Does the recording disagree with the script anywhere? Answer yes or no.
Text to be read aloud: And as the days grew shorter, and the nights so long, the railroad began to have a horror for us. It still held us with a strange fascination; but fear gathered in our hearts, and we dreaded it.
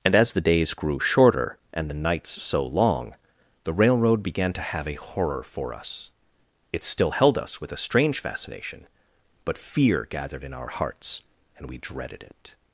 no